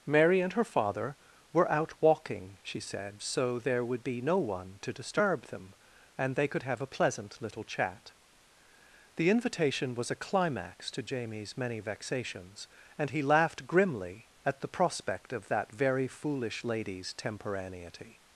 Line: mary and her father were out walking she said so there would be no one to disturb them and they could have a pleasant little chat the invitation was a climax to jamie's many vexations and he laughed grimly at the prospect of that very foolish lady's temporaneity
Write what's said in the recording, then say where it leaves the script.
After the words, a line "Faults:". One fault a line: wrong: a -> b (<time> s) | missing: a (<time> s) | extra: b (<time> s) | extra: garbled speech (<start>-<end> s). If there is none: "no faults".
mary and her father were out walking she said so there would be no one to disturb them and they could have a pleasant little chat the invitation was a climax to jamie's many vexations and he laughed grimly at the prospect of that very foolish lady's temporaneity
Faults:
no faults